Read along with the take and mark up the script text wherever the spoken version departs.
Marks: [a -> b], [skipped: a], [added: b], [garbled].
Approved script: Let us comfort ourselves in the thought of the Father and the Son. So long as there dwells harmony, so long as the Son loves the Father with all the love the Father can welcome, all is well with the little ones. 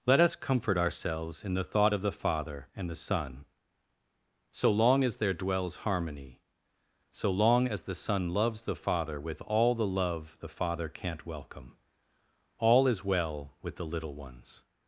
Let us comfort ourselves in the thought of the Father and the Son. So long as there dwells harmony, so long as the Son loves the Father with all the love the Father [can -> can't] welcome, all is well with the little ones.